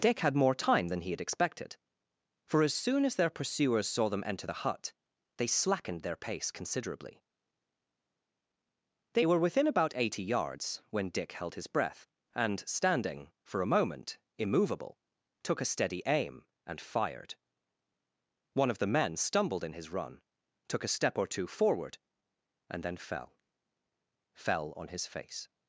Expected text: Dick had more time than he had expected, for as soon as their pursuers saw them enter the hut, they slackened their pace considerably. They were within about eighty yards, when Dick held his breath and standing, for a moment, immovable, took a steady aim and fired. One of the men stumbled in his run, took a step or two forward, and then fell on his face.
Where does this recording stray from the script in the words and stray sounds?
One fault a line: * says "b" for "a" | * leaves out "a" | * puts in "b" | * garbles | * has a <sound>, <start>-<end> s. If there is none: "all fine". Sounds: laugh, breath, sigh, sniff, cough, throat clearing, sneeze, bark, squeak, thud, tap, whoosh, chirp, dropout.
* puts in "fell"